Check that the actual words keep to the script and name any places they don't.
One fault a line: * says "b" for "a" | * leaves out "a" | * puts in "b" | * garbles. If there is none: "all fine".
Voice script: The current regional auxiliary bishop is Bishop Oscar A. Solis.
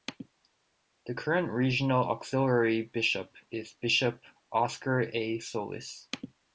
all fine